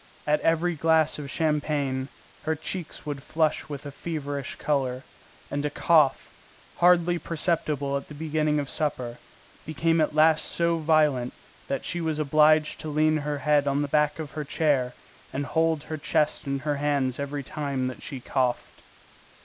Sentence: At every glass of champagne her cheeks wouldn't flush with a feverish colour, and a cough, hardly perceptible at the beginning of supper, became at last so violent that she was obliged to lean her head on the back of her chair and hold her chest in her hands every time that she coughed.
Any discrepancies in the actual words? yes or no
yes